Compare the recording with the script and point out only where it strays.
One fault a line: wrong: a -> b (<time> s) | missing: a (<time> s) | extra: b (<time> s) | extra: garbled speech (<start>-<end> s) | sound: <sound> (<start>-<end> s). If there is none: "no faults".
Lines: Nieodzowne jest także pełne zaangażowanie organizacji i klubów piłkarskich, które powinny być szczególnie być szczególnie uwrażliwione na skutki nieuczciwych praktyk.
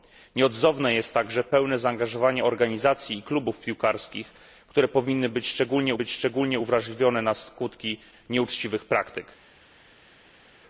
no faults